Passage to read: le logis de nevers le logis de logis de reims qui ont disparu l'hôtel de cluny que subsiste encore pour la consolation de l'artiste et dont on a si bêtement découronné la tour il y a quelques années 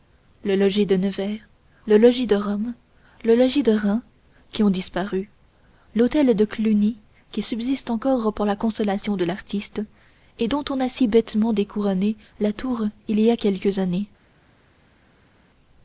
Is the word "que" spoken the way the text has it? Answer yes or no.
no